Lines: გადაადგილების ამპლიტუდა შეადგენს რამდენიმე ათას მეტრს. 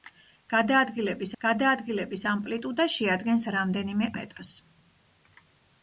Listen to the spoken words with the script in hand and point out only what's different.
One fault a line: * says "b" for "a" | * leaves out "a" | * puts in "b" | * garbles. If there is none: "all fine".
* puts in "გადაადგილების"
* leaves out "ათას"